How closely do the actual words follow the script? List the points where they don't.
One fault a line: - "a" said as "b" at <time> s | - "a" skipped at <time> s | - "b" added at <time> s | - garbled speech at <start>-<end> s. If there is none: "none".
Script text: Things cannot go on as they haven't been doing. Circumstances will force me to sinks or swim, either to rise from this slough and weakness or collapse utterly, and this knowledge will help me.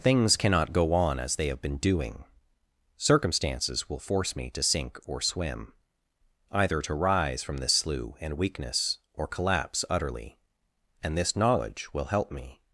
- "haven't" said as "have" at 1.4 s
- "sinks" said as "sink" at 4.6 s